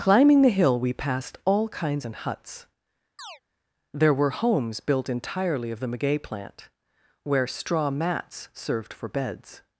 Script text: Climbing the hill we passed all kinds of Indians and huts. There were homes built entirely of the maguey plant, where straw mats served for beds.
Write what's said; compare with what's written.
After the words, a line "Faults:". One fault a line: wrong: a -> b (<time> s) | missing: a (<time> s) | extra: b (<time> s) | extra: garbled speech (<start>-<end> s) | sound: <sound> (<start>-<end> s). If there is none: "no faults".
Climbing the hill we passed all kinds and huts. There were homes built entirely of the maguey plant, where straw mats served for beds.
Faults:
missing: of Indians (2.1 s)
sound: chirp (3.2-3.4 s)